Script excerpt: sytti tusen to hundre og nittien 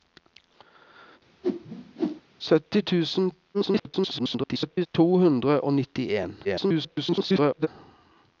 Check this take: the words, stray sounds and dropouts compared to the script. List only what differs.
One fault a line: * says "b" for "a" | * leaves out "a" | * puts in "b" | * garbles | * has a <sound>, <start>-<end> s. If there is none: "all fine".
* has a whoosh, 1.4-2.2 s
* garbles
* garbles